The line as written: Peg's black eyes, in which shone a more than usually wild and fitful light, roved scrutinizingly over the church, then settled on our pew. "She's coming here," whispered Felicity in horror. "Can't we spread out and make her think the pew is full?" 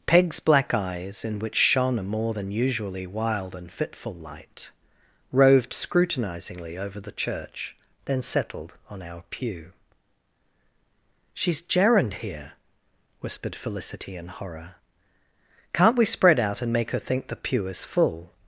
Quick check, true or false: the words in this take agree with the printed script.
false